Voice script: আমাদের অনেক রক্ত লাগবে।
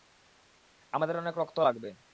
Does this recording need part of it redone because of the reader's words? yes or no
no